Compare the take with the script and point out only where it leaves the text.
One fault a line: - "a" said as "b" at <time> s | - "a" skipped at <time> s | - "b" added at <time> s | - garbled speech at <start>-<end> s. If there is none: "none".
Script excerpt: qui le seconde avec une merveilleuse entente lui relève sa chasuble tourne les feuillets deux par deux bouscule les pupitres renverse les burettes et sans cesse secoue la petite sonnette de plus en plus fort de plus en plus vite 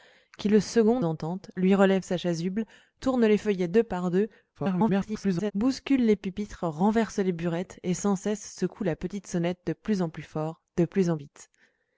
- "avec une merveilleuse" skipped at 1.1 s
- garbled speech at 4.5-5.5 s
- "plus" skipped at 11.2 s